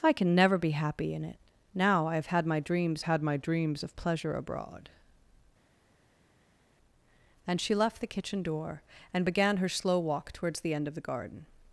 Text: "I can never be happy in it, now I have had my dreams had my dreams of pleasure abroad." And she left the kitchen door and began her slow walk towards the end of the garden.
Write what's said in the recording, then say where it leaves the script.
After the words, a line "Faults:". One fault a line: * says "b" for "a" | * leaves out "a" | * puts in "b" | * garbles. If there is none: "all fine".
"I can never be happy in it, now I have had my dreams had my dreams of pleasure abroad." And she left the kitchen door and began her slow walk towards the end of the garden.
Faults:
all fine